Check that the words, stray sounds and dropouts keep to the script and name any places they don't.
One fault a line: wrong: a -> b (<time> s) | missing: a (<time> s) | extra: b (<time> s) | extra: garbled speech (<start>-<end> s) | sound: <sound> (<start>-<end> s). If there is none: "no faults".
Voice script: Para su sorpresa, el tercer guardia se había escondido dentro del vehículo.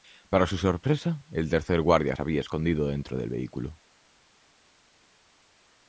no faults